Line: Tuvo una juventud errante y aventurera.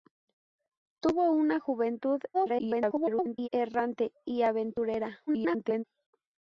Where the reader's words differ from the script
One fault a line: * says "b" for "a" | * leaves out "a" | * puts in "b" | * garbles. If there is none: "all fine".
* garbles
* garbles